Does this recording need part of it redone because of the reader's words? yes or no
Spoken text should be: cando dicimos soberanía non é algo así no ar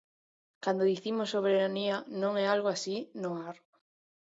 no